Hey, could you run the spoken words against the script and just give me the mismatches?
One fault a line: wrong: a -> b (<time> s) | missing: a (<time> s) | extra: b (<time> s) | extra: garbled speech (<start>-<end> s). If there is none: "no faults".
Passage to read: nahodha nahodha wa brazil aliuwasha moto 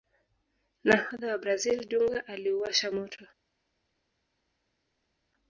missing: nahodha (1.3 s)
extra: dunga (1.9 s)